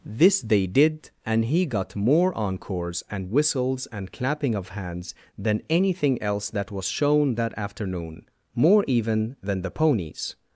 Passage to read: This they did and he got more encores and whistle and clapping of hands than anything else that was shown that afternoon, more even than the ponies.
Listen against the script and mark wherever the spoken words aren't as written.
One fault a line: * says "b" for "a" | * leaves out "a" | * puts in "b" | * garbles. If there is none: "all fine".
* says "whistles" for "whistle"